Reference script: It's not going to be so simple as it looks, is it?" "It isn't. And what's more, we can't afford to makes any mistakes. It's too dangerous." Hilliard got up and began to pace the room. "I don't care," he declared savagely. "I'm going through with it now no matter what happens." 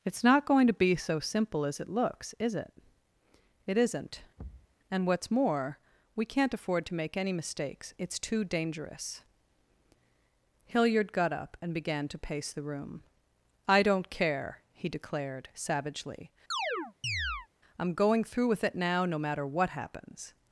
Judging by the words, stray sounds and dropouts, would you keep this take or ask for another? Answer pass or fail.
fail